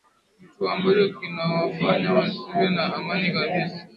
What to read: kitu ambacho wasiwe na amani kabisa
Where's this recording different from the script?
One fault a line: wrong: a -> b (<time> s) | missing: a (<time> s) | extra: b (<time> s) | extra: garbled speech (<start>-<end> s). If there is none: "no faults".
extra: kinawafanya (1.2 s)